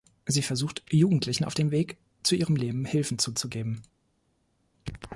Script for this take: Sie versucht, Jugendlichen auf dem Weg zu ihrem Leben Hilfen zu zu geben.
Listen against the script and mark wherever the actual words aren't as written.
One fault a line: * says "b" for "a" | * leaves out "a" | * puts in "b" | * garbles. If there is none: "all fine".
all fine